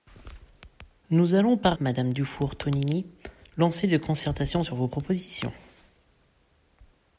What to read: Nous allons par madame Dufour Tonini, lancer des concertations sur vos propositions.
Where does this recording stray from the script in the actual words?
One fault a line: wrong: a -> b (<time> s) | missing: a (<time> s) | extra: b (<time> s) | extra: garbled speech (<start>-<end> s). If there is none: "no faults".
no faults